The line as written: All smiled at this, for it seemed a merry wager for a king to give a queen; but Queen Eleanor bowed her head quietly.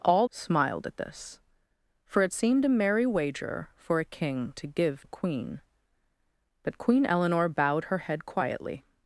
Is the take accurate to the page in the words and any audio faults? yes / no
yes